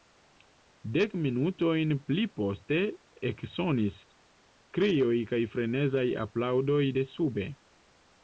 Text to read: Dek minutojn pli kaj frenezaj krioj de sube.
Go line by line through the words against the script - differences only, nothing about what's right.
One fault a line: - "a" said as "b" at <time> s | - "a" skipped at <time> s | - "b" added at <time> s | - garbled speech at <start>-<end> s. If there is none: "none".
- "poste eksonis krioj" added at 2.4 s
- "krioj" said as "aplaŭdoj" at 6.3 s